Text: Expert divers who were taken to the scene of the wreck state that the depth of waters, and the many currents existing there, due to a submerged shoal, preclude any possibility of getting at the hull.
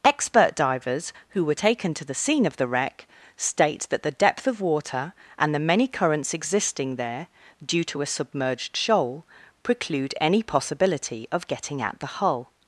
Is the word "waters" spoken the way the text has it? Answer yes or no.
no